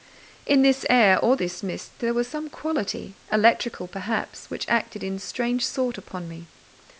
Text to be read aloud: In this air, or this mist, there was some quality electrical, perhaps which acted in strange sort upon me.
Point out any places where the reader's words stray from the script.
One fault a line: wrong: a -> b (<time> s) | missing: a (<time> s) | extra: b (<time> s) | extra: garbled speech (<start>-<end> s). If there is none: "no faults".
no faults